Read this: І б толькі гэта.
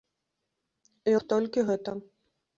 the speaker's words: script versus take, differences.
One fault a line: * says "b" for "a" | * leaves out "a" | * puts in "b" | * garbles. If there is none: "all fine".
all fine